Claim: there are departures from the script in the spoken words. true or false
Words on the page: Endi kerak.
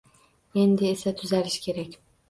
true